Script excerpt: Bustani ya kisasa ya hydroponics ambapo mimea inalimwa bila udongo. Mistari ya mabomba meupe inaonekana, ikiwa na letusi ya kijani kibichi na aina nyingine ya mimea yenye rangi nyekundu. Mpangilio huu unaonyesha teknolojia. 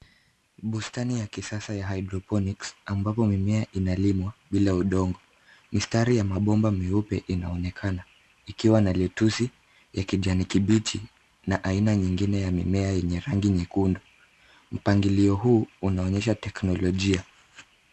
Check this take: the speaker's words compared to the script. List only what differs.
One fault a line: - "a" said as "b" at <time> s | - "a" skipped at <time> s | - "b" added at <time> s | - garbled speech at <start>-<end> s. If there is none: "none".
none